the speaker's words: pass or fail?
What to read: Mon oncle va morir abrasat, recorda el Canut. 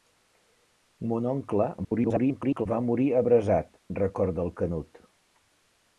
fail